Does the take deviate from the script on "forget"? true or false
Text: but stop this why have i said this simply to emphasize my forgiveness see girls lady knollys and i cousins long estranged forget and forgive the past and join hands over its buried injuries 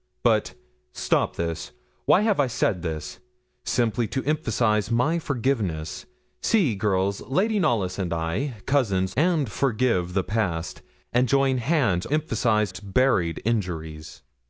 true